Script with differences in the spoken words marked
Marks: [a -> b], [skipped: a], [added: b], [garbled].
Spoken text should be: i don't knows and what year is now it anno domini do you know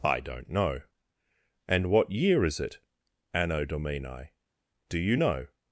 i don't [knows -> know] and what year is [skipped: now] it anno domini do you know